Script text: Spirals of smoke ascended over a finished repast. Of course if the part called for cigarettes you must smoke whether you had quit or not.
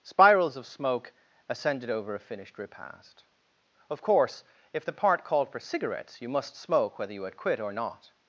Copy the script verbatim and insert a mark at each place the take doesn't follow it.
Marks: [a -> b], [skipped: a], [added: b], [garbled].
Spirals of smoke ascended over a finished repast. Of course if the part called for cigarettes you must smoke whether you had quit or not.